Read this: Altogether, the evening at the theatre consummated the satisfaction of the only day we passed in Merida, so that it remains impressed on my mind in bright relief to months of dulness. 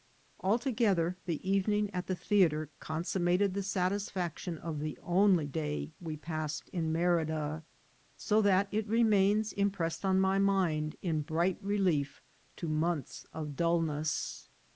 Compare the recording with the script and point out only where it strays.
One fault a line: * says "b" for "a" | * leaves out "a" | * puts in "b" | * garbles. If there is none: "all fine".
all fine